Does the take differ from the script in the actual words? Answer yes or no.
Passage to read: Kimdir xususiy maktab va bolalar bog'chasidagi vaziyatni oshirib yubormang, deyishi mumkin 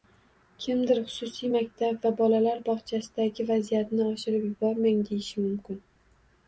no